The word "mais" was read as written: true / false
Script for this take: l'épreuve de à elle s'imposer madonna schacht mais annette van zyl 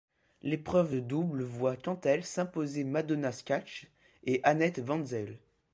false